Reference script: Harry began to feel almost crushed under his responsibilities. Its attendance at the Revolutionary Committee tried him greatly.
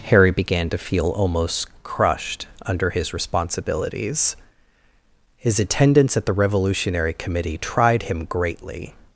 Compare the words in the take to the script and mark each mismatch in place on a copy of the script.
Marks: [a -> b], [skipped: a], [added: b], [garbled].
Harry began to feel almost crushed under his responsibilities. [Its -> His] attendance at the Revolutionary Committee tried him greatly.